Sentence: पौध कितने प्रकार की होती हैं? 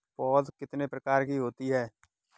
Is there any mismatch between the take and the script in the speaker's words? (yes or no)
no